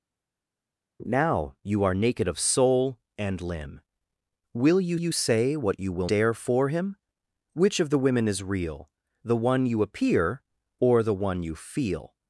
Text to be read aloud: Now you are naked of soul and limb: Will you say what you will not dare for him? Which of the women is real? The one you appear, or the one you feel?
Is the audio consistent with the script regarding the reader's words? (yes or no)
no